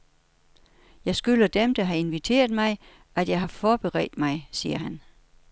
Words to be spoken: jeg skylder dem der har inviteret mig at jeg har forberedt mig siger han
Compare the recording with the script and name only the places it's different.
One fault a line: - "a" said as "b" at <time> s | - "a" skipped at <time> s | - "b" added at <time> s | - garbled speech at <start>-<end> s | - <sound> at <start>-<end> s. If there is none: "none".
none